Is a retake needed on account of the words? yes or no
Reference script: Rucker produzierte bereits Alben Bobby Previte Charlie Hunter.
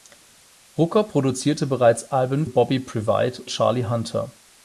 no